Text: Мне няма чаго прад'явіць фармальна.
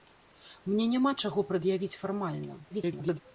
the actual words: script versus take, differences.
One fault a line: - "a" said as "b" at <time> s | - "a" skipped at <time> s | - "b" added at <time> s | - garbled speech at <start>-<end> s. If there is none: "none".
- garbled speech at 2.7-3.2 s